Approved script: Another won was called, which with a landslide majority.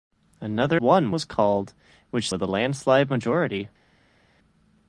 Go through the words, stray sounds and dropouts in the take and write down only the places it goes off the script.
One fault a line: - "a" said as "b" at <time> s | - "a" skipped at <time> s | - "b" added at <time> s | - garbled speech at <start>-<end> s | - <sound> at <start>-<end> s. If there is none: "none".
none